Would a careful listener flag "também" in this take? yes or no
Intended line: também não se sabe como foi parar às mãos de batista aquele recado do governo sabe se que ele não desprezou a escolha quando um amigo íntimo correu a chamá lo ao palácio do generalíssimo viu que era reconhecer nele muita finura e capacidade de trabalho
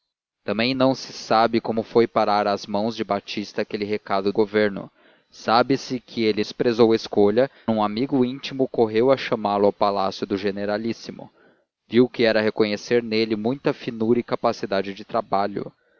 no